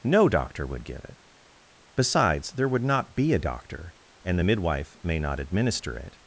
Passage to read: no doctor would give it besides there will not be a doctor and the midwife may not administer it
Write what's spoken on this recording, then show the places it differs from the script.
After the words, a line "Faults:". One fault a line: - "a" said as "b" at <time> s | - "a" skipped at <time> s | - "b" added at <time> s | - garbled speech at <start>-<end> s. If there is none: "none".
no doctor would give it besides there would not be a doctor and the midwife may not administer it
Faults:
- "will" said as "would" at 2.7 s